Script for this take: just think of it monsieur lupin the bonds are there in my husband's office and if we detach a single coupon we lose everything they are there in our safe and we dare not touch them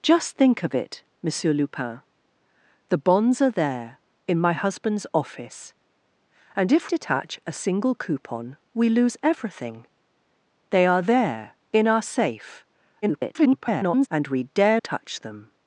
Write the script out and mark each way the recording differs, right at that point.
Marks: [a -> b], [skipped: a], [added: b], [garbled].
just think of it monsieur lupin the bonds are there in my husband's office and if [skipped: we] detach a single coupon we lose everything they are there in our safe [garbled] and we dare [skipped: not] touch them